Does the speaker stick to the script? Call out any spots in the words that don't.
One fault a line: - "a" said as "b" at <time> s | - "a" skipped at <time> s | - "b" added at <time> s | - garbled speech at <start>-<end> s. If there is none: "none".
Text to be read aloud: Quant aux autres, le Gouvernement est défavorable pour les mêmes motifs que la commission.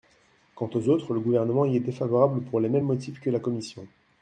- "y" added at 1.6 s